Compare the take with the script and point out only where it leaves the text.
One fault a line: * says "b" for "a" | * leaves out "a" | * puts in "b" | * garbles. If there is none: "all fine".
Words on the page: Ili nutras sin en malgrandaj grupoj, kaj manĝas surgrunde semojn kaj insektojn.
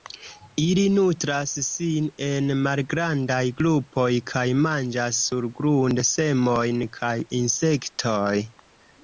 all fine